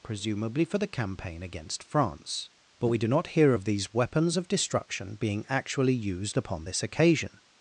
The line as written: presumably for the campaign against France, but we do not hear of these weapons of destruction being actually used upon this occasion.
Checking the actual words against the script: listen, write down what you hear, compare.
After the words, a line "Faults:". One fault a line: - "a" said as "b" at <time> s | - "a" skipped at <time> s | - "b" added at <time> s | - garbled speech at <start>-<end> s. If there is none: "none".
presumably for the campaign against France, but we do not hear of these weapons of destruction being actually used upon this occasion.
Faults:
none